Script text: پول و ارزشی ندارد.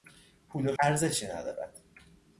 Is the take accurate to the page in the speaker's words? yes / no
yes